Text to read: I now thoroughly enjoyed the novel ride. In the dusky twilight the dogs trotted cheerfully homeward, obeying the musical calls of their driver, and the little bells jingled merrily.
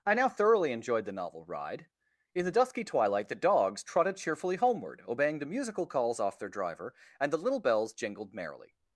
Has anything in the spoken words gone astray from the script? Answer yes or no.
yes